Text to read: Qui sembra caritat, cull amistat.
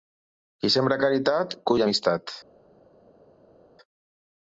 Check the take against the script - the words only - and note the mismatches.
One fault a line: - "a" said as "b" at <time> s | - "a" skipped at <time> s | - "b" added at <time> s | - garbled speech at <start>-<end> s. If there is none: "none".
none